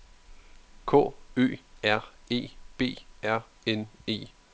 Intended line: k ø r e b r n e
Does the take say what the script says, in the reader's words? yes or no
yes